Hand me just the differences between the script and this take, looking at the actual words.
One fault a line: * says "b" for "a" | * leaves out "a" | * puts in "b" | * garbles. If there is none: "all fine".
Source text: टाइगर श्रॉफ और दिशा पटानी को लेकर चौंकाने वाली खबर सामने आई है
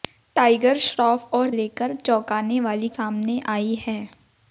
* leaves out "दिशा पटानी को"
* leaves out "खबर"